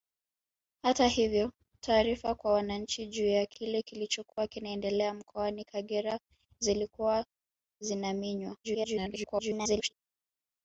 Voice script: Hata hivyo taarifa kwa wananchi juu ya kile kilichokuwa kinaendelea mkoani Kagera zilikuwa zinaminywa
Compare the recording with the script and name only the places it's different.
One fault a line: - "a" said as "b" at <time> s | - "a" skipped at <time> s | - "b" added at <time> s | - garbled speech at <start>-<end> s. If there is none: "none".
- garbled speech at 8.6-9.9 s